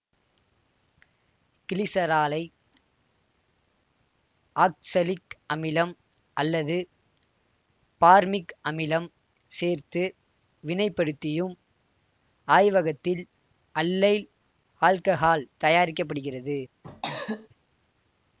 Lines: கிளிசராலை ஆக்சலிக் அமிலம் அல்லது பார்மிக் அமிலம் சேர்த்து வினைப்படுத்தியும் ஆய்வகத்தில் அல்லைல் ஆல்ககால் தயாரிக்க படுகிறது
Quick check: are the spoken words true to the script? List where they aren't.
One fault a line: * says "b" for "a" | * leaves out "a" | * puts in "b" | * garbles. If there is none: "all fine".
all fine